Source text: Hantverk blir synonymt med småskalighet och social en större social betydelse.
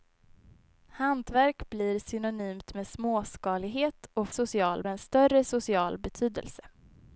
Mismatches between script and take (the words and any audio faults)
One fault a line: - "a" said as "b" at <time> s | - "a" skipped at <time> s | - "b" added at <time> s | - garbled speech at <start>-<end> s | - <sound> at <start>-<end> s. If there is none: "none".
none